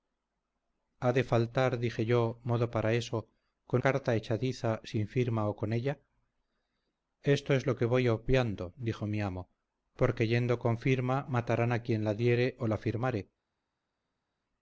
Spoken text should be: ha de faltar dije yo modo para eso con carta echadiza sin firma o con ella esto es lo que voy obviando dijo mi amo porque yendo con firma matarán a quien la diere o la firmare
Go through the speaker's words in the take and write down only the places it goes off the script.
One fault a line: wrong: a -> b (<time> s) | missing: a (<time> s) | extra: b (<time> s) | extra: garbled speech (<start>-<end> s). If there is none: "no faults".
no faults